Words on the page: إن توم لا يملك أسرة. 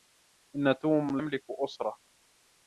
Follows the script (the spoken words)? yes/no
no